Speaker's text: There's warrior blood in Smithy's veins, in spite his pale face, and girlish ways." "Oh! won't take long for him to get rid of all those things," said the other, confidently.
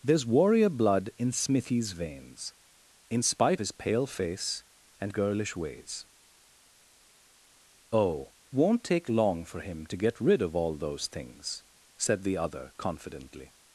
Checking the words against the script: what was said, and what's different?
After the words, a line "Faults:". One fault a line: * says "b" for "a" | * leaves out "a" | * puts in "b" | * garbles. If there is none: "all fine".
There's warrior blood in Smithy's veins, in spite his pale face, and girlish ways." "Oh! won't take long for him to get rid of all those things," said the other, confidently.
Faults:
all fine